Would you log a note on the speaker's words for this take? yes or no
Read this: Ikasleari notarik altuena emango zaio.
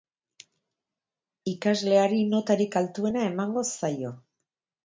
no